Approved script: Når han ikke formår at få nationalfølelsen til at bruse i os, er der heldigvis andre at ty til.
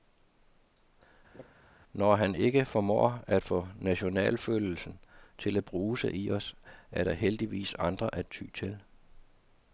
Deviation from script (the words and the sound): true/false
true